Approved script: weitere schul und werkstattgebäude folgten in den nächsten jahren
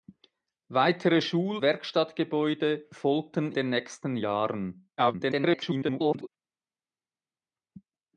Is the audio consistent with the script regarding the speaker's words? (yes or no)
no